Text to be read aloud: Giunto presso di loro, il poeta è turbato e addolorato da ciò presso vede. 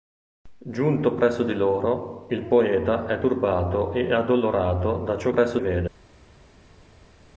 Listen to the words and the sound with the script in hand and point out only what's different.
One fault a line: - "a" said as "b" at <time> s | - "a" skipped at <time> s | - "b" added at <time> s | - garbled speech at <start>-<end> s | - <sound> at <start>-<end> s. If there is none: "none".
none